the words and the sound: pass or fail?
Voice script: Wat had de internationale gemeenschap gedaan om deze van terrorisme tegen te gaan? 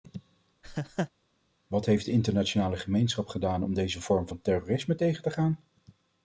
fail